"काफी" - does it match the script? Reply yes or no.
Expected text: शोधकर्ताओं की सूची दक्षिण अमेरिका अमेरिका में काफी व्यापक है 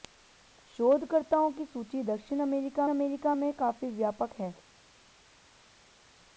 yes